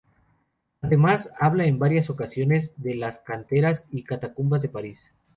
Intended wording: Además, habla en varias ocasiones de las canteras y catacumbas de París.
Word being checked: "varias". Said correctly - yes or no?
yes